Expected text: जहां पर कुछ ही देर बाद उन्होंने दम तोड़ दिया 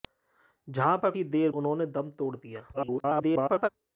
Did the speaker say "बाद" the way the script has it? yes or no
no